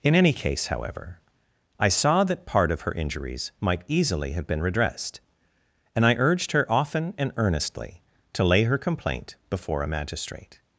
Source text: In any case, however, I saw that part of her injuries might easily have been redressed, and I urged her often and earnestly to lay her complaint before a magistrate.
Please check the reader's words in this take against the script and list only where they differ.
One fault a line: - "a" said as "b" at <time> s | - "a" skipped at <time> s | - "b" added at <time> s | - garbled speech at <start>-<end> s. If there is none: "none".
none